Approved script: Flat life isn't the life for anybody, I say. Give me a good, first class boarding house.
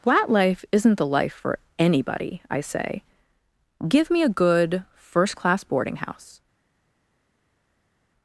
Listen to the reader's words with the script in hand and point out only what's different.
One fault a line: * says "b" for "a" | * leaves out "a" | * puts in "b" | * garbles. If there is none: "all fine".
all fine